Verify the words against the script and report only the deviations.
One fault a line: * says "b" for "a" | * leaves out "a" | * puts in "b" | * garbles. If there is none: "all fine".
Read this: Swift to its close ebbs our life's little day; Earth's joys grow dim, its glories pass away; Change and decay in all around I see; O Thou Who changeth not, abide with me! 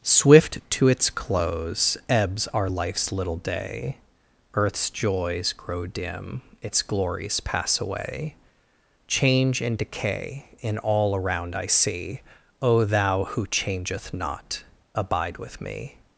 all fine